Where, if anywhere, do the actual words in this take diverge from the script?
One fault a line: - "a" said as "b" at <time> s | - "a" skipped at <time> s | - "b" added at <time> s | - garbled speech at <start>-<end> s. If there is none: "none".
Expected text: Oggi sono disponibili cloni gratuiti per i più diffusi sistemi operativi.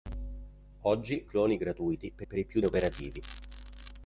- "sono disponibili" skipped at 1.2 s
- "per" added at 2.2 s
- "diffusi sistemi" skipped at 2.6 s